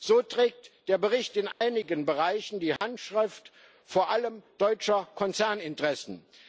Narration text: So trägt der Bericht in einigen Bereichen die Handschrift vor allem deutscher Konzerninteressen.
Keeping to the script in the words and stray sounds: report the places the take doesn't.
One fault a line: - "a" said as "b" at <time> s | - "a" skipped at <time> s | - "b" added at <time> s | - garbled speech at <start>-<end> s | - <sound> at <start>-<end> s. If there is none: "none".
- dropout at 1.5-1.6 s
- dropout at 2.8-2.8 s